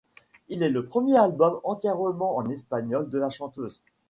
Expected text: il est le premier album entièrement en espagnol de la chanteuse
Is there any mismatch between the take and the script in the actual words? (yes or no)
no